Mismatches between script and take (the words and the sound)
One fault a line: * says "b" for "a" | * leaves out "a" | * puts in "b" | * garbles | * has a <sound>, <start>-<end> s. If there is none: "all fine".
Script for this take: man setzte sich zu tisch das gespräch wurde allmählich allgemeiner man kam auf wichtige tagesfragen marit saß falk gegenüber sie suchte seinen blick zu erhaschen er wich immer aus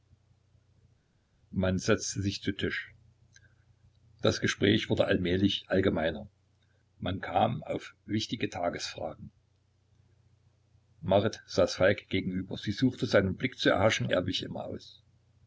all fine